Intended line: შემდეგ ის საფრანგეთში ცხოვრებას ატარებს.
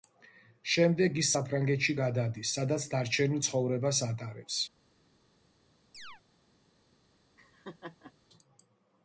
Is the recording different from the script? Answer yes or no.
yes